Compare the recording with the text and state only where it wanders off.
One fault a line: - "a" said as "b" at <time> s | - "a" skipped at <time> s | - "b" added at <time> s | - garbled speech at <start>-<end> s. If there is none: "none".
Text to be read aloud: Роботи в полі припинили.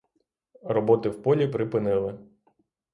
none